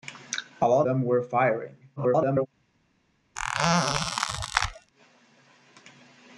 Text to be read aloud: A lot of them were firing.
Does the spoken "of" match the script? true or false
false